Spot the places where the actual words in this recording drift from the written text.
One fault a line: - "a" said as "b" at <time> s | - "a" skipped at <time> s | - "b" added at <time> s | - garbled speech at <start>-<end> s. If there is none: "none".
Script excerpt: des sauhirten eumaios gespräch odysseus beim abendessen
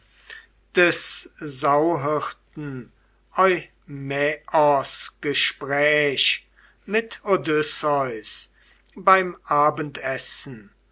- "mit" added at 6.9 s